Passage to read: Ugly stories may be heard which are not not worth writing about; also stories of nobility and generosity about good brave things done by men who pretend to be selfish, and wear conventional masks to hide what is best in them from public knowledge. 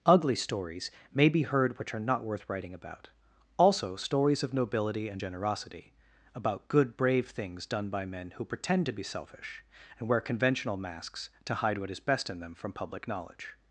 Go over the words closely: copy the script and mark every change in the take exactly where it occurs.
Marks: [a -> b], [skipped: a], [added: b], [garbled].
Ugly stories may be heard which are not [skipped: not] worth writing about; also stories of nobility and generosity about good brave things done by men who pretend to be selfish, and wear conventional masks to hide what is best in them from public knowledge.